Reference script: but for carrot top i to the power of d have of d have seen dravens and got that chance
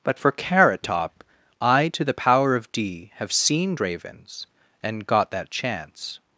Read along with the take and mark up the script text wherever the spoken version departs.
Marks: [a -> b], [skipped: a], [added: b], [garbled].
but for carrot top i to the power of d have [skipped: of d have] seen dravens and got that chance